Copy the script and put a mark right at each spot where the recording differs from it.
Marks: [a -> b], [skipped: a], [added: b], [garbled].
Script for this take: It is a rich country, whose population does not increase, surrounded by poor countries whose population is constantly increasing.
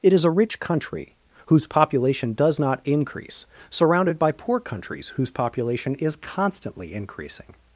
It is a rich country, whose population does not increase, surrounded by poor countries whose population is constantly increasing.